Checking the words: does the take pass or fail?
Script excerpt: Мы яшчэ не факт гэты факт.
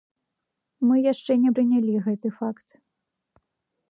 fail